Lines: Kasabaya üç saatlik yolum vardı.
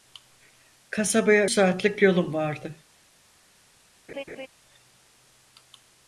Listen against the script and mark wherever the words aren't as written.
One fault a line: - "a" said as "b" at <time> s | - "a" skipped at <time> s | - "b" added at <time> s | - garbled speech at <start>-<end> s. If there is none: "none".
- "üç" skipped at 1.5 s